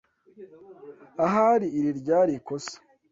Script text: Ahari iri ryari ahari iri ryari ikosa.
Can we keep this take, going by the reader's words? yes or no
no